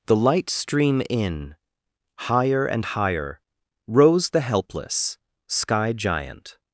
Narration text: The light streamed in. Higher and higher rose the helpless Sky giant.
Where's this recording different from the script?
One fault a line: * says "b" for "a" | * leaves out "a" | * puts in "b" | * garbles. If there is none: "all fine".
* says "stream" for "streamed"